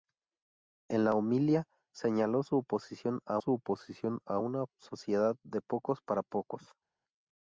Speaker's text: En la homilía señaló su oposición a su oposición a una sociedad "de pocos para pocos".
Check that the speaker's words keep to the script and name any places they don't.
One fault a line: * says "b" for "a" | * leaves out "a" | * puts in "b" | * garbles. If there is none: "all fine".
all fine